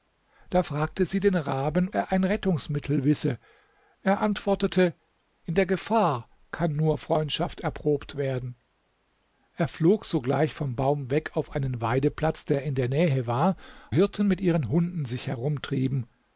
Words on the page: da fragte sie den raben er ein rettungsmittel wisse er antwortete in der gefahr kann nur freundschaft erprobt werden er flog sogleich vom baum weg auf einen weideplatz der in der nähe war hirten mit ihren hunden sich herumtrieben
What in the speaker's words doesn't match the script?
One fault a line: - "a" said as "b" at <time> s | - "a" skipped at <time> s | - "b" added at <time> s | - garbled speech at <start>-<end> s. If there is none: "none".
none